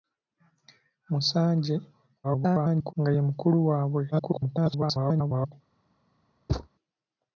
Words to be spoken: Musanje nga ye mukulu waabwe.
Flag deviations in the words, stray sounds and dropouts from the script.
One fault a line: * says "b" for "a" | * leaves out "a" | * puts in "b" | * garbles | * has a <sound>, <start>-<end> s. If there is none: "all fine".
* garbles
* garbles
* has a thud, 6.5-6.7 s